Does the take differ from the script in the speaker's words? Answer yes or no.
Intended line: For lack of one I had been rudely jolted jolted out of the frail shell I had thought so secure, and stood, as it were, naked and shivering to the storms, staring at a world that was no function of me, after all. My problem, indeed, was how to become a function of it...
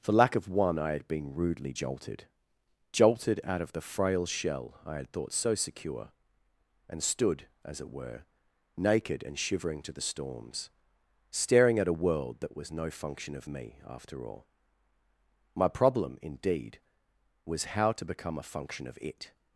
no